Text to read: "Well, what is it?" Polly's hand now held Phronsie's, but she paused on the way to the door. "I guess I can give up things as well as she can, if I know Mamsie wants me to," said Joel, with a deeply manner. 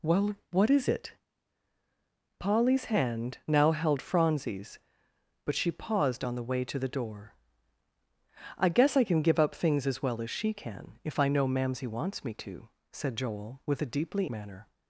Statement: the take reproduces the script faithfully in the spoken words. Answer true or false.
true